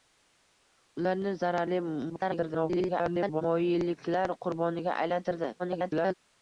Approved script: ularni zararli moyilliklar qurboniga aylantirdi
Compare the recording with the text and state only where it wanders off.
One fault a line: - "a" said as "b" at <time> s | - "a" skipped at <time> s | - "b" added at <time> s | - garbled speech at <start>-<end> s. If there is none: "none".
- garbled speech at 2.1-3.4 s
- garbled speech at 5.6-6.1 s